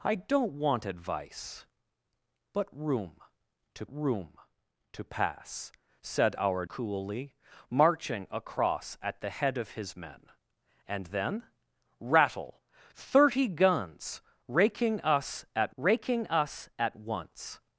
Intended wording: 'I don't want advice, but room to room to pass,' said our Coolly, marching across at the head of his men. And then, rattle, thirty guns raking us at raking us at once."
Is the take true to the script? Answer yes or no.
yes